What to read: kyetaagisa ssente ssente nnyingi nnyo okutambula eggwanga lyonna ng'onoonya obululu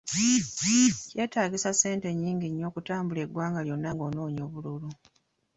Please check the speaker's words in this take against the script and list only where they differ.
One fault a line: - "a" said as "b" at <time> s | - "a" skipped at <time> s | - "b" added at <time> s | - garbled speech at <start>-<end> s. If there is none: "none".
- "ssente" skipped at 2.1 s